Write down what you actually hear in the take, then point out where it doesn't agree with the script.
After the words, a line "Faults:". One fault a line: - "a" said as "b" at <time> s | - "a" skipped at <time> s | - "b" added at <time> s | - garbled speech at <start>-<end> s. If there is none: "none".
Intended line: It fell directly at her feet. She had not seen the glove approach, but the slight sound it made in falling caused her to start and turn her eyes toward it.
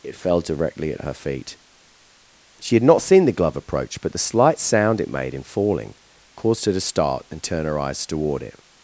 It fell directly at her feet. She had not seen the glove approach, but the slight sound it made in falling caused her to start and turn her eyes toward it.
Faults:
none